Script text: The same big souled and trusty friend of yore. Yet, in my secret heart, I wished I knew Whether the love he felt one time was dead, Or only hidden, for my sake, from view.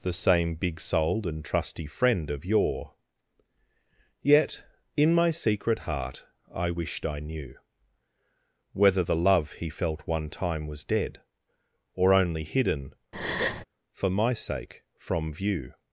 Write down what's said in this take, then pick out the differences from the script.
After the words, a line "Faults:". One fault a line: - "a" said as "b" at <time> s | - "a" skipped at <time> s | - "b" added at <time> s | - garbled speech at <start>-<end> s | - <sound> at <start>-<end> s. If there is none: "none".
The same big souled and trusty friend of yore. Yet, in my secret heart, I wished I knew Whether the love he felt one time was dead, Or only hidden, for my sake, from view.
Faults:
- breath at 13.1-13.6 s